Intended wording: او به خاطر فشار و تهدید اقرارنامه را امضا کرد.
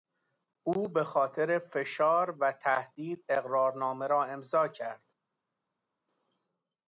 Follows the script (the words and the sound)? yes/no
yes